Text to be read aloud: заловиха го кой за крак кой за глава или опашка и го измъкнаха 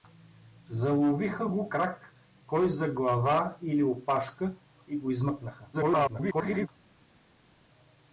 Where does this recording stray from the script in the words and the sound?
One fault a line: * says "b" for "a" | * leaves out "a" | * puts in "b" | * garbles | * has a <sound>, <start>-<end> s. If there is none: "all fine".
* leaves out "кой за"
* garbles